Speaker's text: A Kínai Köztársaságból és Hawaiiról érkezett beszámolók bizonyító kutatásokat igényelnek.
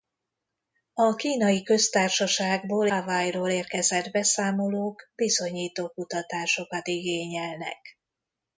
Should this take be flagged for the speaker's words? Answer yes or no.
yes